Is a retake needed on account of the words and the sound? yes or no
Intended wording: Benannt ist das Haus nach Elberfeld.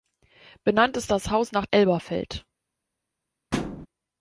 yes